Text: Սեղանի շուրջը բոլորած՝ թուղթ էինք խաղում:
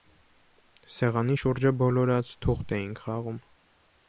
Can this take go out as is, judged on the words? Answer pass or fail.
pass